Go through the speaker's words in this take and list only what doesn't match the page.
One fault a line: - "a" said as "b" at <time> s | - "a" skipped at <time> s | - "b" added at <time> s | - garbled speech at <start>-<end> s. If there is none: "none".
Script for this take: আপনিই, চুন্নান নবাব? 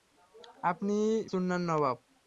none